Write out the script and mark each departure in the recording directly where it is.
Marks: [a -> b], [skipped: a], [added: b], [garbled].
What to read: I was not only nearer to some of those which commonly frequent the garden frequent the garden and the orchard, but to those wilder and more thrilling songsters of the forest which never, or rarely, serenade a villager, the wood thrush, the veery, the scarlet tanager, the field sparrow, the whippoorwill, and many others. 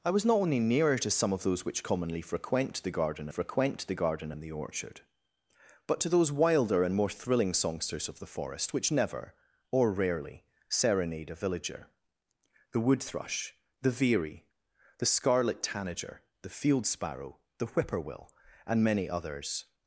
I was not only nearer to some of those which commonly frequent the garden frequent the garden and the orchard, but to those wilder and more thrilling songsters of the forest which never, or rarely, serenade a villager, the wood thrush, the veery, the scarlet tanager, the field sparrow, the whippoorwill, and many others.